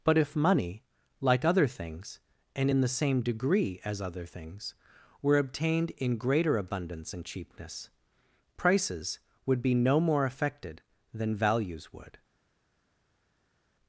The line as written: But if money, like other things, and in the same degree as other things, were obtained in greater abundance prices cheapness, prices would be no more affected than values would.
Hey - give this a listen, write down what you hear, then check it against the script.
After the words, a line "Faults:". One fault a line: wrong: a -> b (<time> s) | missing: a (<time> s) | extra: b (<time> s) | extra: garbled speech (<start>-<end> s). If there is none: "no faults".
But if money, like other things, and in the same degree as other things, were obtained in greater abundance and cheapness, prices would be no more affected than values would.
Faults:
wrong: prices -> and (7.1 s)